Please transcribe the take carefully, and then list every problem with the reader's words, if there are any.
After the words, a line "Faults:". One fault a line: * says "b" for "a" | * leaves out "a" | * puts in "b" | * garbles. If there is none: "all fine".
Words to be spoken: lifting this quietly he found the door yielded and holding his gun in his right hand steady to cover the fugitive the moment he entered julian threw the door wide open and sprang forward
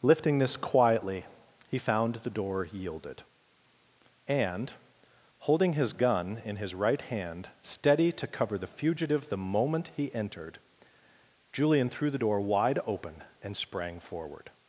lifting this quietly he found the door yielded and holding his gun in his right hand steady to cover the fugitive the moment he entered julian threw the door wide open and sprang forward
Faults:
all fine